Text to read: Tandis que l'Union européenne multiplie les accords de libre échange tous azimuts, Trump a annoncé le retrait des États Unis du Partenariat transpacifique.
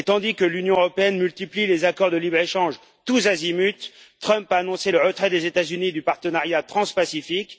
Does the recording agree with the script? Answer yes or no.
yes